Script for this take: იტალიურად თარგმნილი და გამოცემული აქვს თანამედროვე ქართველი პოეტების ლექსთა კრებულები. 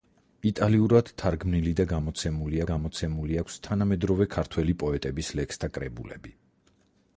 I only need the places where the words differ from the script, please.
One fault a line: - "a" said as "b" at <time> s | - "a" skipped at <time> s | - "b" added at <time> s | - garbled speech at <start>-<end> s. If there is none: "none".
- "გამოცემული" added at 2.7 s